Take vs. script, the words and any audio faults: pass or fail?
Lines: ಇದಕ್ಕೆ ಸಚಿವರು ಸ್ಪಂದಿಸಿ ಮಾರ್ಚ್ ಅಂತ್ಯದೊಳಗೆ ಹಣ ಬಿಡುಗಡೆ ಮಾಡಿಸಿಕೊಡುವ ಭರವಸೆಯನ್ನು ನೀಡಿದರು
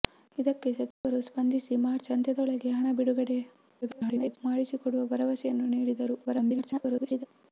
fail